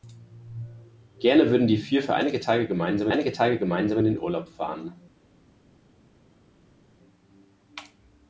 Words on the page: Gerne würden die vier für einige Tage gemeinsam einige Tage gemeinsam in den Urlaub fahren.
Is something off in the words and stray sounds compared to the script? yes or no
no